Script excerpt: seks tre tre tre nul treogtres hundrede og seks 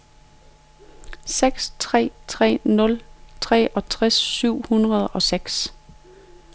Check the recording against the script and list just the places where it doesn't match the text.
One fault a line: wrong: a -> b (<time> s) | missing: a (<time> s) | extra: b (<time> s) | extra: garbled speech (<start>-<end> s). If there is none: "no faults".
missing: tre (2.6 s)
extra: syv (4.1 s)